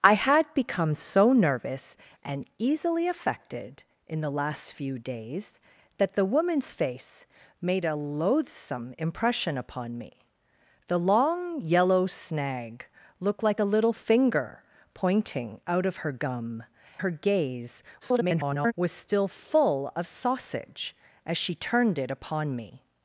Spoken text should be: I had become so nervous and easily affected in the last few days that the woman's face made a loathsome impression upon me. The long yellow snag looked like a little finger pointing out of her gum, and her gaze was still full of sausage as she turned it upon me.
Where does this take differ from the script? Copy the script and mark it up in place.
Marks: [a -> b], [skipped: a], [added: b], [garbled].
I had become so nervous and easily affected in the last few days that the woman's face made a loathsome impression upon me. The long yellow snag looked like a little finger pointing out of her gum, [skipped: and] her gaze [garbled] was still full of sausage as she turned it upon me.